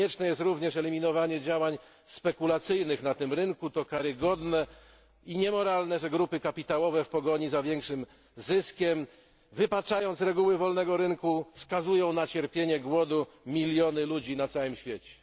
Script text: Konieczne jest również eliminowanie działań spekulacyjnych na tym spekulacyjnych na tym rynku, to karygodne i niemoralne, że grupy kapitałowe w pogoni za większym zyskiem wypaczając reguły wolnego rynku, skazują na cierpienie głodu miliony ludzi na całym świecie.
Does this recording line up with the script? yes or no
no